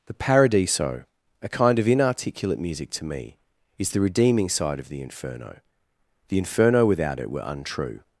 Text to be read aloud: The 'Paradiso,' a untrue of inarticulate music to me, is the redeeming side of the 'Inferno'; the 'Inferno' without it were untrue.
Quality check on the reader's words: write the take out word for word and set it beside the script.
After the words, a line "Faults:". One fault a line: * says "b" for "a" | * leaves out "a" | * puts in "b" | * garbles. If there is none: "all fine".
The 'Paradiso,' a kind of inarticulate music to me, is the redeeming side of the 'Inferno'; the 'Inferno' without it were untrue.
Faults:
* says "kind" for "untrue"